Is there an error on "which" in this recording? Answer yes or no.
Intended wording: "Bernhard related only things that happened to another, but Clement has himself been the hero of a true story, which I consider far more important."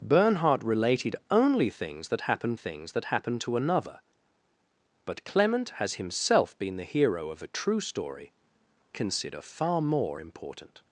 yes